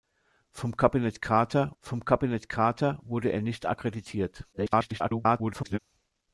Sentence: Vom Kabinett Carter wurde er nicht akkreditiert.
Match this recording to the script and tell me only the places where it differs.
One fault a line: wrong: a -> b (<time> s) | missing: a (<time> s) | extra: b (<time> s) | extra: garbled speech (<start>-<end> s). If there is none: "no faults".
extra: vom Kabinett Carter (1.8 s)
extra: garbled speech (4.5-5.8 s)